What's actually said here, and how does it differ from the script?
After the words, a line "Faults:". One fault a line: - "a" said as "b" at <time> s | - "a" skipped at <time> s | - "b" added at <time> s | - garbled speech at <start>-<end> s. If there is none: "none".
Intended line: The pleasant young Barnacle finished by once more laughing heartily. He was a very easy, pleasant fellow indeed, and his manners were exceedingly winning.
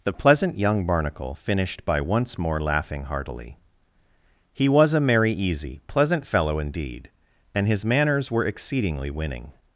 The pleasant young Barnacle finished by once more laughing heartily. He was a merry easy, pleasant fellow indeed, and his manners were exceedingly winning.
Faults:
- "very" said as "merry" at 5.0 s